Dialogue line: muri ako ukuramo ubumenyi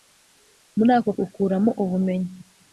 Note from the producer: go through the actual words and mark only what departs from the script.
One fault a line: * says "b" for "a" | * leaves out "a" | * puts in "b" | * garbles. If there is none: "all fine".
all fine